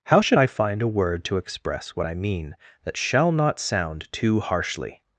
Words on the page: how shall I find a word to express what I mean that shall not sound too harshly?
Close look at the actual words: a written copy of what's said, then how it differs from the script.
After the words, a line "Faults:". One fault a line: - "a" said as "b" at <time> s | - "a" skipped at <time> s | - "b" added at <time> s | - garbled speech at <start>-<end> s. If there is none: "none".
how should I find a word to express what I mean that shall not sound too harshly?
Faults:
- "shall" said as "should" at 0.2 s